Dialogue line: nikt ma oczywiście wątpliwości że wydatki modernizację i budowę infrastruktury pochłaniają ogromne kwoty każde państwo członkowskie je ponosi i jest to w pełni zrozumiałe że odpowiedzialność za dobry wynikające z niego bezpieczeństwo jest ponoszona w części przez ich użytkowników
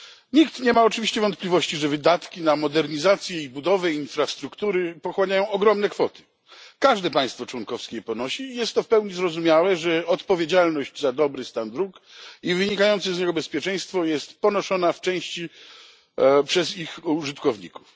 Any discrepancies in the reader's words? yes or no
yes